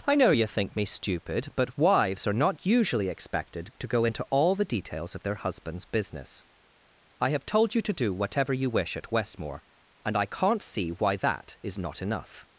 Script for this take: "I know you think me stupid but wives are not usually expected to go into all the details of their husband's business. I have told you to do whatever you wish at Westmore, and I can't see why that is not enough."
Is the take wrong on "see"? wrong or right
right